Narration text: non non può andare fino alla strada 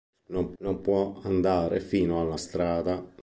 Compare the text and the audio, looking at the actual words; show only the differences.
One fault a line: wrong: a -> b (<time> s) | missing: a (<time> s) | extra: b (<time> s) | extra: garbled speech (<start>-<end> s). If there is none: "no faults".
no faults